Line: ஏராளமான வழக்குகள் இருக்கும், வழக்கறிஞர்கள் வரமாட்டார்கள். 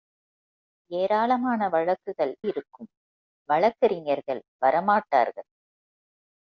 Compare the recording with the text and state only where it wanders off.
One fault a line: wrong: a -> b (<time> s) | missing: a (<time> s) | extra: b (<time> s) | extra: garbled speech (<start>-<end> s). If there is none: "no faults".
no faults